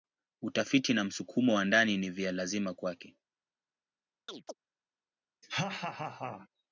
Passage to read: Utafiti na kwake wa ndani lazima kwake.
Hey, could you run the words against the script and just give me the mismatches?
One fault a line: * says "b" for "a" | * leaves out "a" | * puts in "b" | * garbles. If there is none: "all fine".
* says "msukumo" for "kwake"
* puts in "ni vya"